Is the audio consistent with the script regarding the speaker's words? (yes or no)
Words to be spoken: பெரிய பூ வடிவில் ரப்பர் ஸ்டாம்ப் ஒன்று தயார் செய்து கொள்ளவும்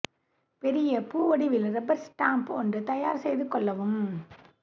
yes